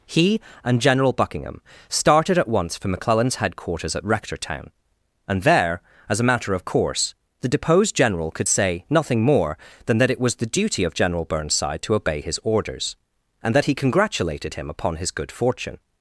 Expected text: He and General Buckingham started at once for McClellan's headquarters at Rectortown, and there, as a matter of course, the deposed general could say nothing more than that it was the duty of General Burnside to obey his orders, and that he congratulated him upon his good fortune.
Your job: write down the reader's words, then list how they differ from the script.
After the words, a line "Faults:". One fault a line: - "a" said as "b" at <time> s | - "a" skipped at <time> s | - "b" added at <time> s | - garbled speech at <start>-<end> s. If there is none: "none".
He and General Buckingham started at once for McClellan's headquarters at Rectortown, and there, as a matter of course, the deposed general could say nothing more than that it was the duty of General Burnside to obey his orders, and that he congratulated him upon his good fortune.
Faults:
none